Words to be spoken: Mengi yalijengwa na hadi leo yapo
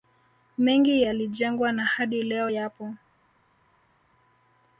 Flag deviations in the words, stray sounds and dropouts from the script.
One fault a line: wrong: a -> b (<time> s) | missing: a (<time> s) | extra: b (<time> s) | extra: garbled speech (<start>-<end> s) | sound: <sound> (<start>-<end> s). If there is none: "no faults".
no faults